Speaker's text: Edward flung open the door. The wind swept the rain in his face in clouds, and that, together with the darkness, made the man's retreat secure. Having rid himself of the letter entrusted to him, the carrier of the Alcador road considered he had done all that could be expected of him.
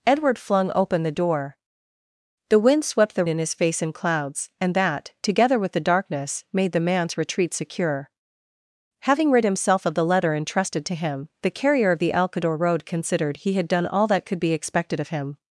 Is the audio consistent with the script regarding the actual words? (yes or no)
no